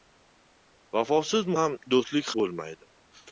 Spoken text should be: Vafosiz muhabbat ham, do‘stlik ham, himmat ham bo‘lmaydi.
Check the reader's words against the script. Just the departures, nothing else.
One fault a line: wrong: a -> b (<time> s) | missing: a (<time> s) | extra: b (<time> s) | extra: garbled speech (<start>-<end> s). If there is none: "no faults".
missing: muhabbat (1.5 s)
missing: ham himmat ham (2.3 s)